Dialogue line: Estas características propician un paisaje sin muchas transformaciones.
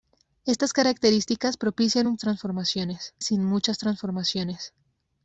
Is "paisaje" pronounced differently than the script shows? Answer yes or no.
yes